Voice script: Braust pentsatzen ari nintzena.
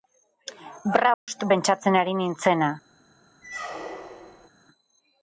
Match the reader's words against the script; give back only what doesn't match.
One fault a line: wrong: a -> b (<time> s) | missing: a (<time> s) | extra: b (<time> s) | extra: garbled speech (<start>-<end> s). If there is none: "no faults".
no faults